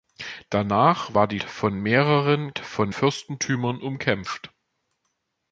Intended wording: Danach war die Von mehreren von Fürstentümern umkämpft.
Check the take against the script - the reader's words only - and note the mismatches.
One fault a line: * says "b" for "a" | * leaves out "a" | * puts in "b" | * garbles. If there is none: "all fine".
all fine